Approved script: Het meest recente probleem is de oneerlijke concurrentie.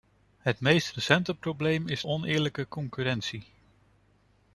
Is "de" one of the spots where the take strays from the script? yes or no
yes